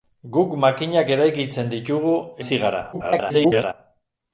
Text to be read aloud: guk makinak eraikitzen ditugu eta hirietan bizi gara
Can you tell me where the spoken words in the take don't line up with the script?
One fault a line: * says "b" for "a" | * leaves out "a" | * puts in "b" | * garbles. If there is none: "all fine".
* leaves out "eta hirietan"
* garbles